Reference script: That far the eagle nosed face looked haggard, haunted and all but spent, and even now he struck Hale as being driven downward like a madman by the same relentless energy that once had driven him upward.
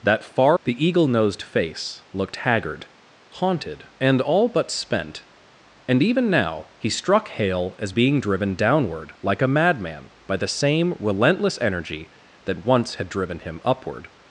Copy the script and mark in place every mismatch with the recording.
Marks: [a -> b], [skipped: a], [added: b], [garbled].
That far the eagle nosed face looked haggard, haunted and all but spent, and even now he struck Hale as being driven downward like a madman by the same relentless energy that once had driven him upward.